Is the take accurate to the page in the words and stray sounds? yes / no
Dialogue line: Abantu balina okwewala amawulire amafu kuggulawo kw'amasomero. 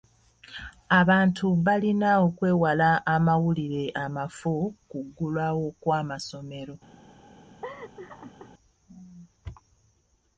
no